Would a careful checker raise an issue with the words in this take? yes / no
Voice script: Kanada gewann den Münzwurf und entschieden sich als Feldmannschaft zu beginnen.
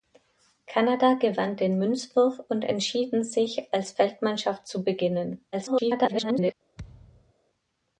yes